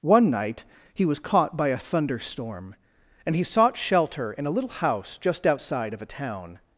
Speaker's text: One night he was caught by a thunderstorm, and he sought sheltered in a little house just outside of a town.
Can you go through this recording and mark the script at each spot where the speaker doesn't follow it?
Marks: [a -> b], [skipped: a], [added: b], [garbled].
One night he was caught by a thunderstorm, and he sought [sheltered -> shelter] in a little house just outside of a town.